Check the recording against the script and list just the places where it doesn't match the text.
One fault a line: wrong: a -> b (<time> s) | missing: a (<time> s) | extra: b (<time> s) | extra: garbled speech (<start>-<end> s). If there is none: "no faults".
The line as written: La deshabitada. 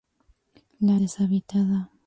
no faults